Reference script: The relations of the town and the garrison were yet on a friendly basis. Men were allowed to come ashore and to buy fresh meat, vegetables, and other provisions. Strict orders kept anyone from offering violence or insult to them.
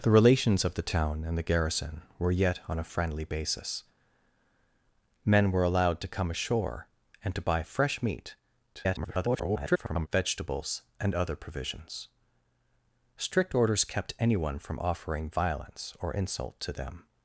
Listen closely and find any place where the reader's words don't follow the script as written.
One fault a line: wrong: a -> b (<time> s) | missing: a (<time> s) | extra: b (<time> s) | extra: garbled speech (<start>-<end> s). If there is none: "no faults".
extra: garbled speech (8.7-10.1 s)